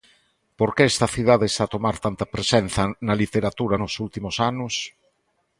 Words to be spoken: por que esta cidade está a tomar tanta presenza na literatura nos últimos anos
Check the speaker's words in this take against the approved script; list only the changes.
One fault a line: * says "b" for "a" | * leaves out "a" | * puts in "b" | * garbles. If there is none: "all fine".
all fine